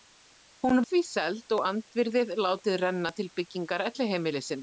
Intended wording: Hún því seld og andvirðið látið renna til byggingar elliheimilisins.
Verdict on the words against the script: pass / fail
pass